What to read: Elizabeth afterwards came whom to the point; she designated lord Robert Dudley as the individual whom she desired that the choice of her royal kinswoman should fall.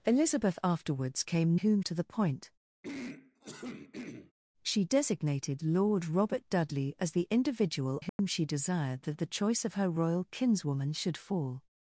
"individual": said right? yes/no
yes